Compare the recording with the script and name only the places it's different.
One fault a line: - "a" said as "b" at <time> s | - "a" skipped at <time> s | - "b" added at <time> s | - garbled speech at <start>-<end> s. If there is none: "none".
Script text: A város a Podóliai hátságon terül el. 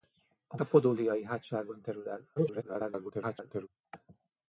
- "város" skipped at 0.6 s
- garbled speech at 2.4-3.7 s